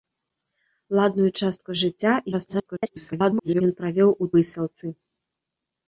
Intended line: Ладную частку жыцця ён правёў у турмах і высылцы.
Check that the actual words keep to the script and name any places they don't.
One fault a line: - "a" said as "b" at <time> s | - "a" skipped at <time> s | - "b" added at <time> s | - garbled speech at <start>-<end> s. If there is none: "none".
- garbled speech at 2.3-3.6 s
- "турмах і" skipped at 4.3 s